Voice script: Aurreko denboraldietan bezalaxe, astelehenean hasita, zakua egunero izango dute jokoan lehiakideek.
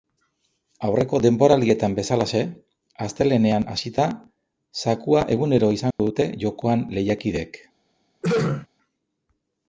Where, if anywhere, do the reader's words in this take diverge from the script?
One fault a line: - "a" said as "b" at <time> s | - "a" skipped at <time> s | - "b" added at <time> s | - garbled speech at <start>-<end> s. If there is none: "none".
none